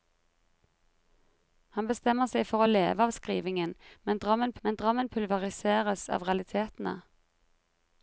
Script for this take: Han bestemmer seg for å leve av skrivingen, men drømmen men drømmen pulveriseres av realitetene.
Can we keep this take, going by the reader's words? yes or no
yes